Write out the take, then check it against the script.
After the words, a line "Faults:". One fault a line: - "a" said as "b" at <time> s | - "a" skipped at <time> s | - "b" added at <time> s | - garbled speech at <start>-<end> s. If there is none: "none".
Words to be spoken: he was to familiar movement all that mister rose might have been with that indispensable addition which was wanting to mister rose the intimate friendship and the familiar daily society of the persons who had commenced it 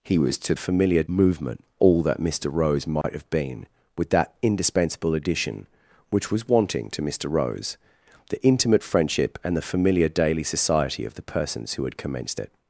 he was to familiar movement all that mister rose might have been with that indispensable addition which was wanting to mister rose the intimate friendship and the familiar daily society of the persons who had commenced it
Faults:
none